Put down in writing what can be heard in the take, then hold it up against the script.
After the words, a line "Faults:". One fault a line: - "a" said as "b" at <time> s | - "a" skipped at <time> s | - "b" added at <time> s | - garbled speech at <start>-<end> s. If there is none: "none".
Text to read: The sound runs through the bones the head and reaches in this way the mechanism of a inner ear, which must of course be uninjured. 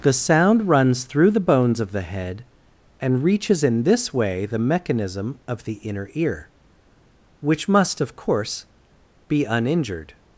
The sound runs through the bones of the head and reaches in this way the mechanism of the inner ear, which must of course be uninjured.
Faults:
- "of" added at 1.8 s
- "a" said as "the" at 5.6 s